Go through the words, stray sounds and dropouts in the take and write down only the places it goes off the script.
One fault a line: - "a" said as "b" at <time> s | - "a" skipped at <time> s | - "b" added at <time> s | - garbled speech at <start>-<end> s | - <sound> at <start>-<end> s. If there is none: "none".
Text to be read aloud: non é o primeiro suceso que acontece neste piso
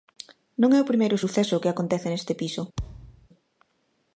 - thud at 2.8-3.3 s